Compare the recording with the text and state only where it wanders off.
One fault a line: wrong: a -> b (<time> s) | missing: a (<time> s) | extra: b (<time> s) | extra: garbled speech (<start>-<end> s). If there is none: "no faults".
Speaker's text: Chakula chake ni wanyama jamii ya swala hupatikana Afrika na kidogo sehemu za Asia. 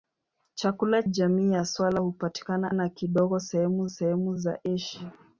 missing: chake ni wanyama (1.0 s)
missing: Afrika (2.7 s)
extra: sehemu (3.9 s)